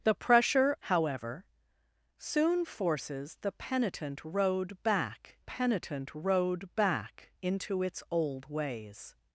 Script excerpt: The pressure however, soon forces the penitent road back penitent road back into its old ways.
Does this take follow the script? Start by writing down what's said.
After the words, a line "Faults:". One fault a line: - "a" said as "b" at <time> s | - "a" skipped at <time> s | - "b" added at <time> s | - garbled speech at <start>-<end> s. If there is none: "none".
The pressure however, soon forces the penitent road back penitent road back into its old ways.
Faults:
none